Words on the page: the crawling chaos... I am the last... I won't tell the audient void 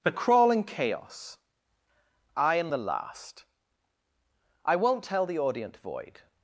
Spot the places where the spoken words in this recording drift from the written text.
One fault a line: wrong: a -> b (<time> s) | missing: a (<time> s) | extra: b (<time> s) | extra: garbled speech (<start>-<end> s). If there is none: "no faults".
no faults